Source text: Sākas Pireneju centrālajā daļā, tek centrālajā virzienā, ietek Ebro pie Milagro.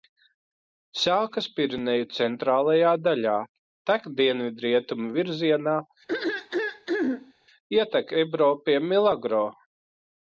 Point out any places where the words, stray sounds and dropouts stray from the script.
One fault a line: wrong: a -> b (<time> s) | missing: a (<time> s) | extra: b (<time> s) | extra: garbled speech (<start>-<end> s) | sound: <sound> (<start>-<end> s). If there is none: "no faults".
wrong: centrālajā -> dienvidrietumu (4.2 s)
sound: throat clearing (6.1-7.3 s)